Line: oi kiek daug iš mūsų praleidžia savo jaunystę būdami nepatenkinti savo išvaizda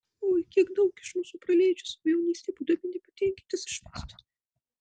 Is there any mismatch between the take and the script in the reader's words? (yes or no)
yes